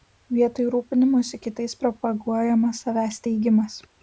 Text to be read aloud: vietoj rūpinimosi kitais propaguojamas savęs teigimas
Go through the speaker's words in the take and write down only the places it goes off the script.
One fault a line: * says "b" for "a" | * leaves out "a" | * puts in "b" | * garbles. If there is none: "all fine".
all fine